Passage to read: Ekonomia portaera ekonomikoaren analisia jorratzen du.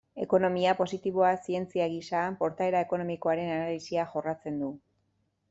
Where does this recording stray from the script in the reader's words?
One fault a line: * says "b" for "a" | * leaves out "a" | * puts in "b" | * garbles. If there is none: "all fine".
* puts in "positiboa zientzia gisa"